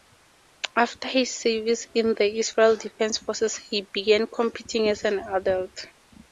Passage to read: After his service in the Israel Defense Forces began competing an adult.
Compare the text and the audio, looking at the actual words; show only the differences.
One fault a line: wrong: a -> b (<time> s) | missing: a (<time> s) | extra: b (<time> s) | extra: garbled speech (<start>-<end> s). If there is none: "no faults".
extra: he (3.6 s)
extra: as (4.9 s)